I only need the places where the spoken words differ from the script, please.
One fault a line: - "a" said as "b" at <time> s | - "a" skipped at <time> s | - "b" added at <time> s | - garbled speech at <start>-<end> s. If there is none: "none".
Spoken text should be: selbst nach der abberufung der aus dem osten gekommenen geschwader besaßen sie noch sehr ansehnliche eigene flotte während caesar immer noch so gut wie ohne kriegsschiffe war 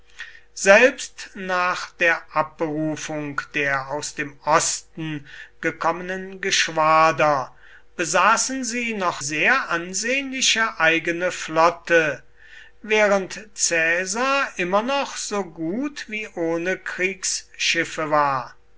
none